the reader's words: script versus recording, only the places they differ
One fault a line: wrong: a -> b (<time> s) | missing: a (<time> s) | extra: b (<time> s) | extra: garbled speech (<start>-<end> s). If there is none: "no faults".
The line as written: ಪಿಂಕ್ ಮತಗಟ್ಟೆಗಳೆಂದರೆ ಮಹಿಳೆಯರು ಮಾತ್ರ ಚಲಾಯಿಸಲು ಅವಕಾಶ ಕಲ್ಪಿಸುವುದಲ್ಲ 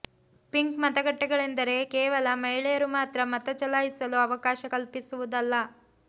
extra: ಕೇವಲ (1.9 s)
extra: ಮತ (3.3 s)